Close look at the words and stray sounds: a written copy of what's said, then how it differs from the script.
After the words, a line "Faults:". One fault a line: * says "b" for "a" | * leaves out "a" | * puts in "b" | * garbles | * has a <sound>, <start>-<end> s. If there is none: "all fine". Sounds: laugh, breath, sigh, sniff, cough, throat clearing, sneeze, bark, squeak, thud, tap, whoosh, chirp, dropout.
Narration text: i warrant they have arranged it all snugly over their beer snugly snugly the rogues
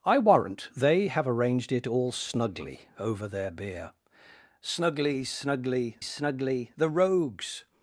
i warrant they have arranged it all snugly over their beer snugly snugly snugly the rogues
Faults:
* puts in "snugly"